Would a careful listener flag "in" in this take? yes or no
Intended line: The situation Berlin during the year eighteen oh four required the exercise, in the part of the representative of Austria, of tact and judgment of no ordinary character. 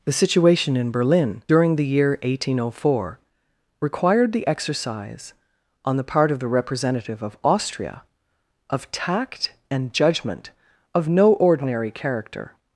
yes